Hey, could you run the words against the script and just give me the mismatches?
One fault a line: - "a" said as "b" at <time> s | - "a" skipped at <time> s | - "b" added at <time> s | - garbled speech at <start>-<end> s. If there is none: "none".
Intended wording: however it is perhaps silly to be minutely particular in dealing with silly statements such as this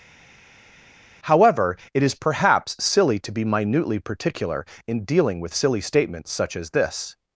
none